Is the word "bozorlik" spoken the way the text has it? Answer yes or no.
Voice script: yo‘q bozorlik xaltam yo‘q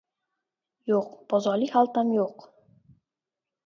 yes